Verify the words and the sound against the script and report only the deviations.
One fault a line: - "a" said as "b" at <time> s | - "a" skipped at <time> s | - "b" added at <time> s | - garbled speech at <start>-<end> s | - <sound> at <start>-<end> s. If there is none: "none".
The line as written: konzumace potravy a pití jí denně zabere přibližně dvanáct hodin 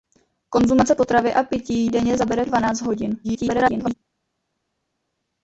- "jí" skipped at 1.9 s
- "přibližně" skipped at 2.5 s
- garbled speech at 3.2-3.9 s